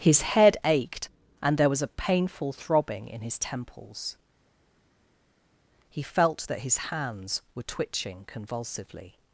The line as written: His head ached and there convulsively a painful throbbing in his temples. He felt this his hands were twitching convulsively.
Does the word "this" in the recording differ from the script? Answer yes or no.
yes